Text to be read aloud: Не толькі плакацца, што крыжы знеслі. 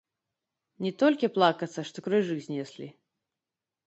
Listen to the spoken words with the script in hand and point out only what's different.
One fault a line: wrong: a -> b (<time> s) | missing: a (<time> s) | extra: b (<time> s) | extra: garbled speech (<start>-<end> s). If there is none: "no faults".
no faults